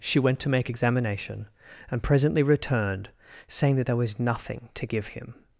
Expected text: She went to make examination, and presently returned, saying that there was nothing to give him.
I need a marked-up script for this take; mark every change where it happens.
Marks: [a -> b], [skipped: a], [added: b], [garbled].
She went to make examination, and presently returned, saying that there was nothing to give him.